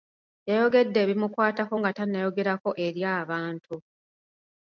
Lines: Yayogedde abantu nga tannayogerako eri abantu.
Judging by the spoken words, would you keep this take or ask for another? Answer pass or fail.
fail